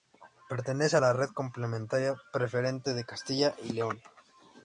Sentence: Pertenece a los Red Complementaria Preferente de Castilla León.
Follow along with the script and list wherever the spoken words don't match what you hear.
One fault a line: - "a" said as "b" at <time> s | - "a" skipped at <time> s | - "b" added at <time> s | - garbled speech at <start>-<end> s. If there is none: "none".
- "los" said as "la" at 1.0 s
- "y" added at 3.6 s